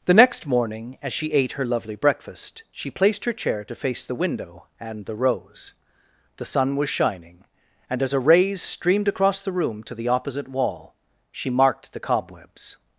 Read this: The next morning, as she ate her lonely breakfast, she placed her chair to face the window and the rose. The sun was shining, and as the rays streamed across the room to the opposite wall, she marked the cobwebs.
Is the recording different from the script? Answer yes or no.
yes